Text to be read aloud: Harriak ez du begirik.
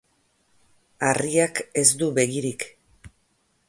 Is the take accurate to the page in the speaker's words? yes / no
yes